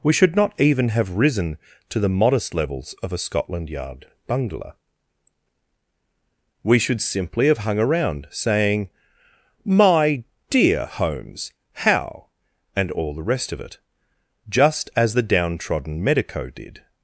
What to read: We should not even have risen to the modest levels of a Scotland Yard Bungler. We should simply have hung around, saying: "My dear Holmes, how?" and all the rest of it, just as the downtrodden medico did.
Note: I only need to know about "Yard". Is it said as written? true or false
true